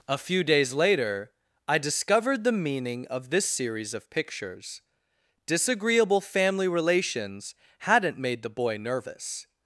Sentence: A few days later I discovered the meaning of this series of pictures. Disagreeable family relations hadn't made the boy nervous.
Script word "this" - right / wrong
right